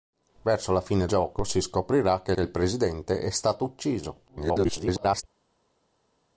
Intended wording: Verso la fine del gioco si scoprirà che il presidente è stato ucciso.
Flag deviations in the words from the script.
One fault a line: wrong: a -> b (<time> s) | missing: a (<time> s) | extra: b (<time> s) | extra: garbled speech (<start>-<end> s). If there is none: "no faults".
missing: del (1.1 s)
extra: che (2.3 s)
extra: garbled speech (4.3-5.2 s)